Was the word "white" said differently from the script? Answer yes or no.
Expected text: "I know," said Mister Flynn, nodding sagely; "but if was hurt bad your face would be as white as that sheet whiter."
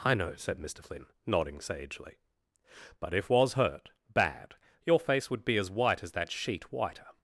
no